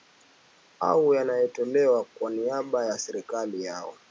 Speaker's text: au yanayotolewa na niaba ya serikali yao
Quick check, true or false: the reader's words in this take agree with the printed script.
false